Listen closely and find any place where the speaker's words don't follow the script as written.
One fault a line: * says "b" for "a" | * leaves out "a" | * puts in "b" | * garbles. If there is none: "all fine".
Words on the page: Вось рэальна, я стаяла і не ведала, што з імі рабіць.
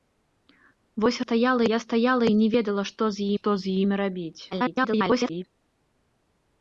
* says "стаяла" for "рэальна"
* puts in "што з"
* garbles